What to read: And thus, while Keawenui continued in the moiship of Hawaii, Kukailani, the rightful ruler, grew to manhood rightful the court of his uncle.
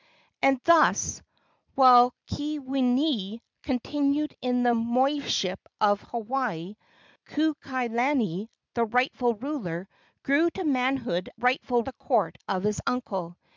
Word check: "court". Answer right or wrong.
right